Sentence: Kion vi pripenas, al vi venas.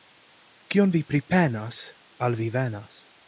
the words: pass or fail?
pass